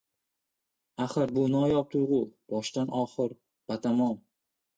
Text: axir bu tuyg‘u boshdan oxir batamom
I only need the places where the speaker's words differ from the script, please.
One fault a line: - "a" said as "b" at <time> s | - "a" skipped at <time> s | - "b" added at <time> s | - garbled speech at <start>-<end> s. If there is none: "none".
- "noyob" added at 1.5 s